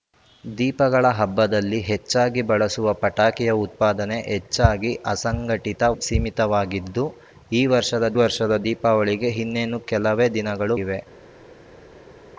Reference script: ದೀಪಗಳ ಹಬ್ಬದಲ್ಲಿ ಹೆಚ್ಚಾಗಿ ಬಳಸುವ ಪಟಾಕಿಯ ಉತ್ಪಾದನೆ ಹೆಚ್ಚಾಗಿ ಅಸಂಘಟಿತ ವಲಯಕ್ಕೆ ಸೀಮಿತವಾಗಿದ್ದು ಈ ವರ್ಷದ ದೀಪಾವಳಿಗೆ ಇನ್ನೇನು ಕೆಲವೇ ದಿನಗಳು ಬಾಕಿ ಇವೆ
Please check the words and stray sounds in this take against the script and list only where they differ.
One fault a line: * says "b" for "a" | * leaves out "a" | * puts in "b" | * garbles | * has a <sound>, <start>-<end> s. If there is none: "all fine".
* leaves out "ವಲಯಕ್ಕೆ"
* puts in "ವರ್ಷದ"
* leaves out "ಬಾಕಿ"